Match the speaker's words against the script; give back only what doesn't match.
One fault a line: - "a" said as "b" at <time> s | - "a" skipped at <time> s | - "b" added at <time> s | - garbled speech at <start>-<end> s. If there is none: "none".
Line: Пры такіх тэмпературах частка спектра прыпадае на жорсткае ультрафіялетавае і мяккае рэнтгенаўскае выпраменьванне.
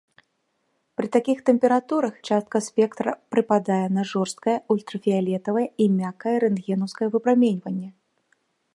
none